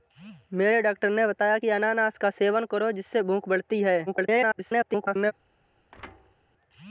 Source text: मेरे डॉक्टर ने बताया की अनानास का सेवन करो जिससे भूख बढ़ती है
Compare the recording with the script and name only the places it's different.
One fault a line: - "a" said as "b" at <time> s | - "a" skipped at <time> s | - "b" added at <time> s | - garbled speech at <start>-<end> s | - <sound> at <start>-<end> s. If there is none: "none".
- garbled speech at 4.1-5.3 s
- thud at 5.9-6.4 s